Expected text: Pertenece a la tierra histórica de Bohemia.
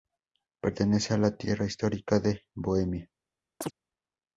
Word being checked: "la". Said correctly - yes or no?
yes